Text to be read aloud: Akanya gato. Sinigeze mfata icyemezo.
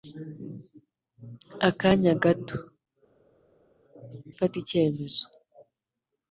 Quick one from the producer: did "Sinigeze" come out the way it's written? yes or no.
no